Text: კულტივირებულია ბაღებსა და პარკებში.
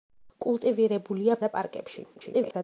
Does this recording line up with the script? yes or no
no